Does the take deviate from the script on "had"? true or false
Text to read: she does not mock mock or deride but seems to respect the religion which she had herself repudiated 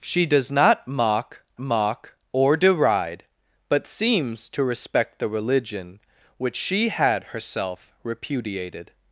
false